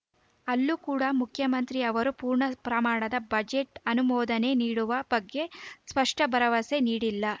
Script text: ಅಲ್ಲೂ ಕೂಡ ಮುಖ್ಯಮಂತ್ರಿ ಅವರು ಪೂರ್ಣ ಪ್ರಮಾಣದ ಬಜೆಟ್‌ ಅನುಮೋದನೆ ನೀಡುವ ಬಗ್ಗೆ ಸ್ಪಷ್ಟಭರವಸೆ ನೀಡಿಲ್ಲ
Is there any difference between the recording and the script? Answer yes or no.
no